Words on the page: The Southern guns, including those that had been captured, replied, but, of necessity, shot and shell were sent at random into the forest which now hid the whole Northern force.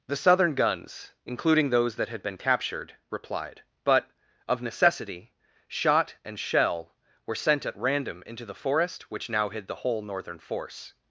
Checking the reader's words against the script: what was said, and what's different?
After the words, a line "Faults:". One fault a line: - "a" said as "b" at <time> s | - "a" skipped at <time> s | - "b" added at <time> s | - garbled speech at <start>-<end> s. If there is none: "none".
The Southern guns, including those that had been captured, replied, but, of necessity, shot and shell were sent at random into the forest which now hid the whole Northern force.
Faults:
none